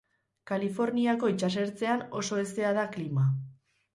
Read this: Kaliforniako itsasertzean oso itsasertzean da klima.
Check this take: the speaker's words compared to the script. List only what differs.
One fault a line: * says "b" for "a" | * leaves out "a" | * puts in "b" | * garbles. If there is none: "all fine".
* says "hezea" for "itsasertzean"